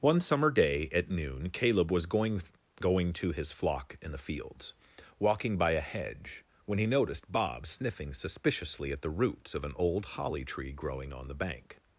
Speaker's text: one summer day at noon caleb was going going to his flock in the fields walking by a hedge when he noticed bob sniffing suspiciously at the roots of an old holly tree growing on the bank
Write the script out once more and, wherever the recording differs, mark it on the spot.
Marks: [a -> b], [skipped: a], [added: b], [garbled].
one summer day at noon caleb was going going to his flock in the fields walking by a hedge when he noticed bob sniffing suspiciously at the roots of an old holly tree growing on the bank